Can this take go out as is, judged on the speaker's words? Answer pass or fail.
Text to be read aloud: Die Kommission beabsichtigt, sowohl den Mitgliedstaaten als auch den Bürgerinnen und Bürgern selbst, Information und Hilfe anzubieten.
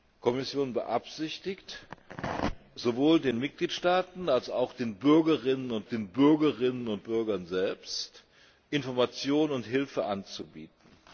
fail